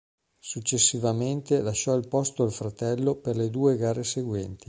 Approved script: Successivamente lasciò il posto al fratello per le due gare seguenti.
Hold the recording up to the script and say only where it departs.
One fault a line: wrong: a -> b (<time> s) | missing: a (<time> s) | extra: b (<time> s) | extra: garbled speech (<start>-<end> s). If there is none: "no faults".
no faults